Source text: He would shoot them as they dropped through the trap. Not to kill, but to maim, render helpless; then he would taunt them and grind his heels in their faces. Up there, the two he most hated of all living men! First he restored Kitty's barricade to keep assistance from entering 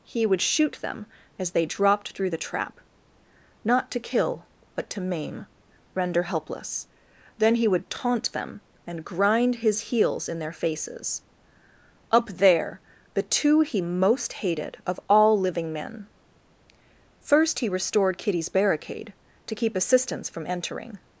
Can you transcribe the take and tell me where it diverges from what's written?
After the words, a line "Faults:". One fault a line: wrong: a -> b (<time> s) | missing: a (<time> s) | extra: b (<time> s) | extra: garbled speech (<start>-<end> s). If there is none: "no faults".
He would shoot them as they dropped through the trap. Not to kill, but to maim, render helpless; then he would taunt them and grind his heels in their faces. Up there, the two he most hated of all living men! First he restored Kitty's barricade to keep assistance from entering
Faults:
no faults